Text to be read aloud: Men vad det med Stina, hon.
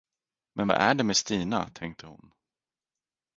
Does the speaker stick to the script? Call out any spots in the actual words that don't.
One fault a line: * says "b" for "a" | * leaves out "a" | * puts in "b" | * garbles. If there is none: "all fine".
* puts in "är"
* puts in "tänkte"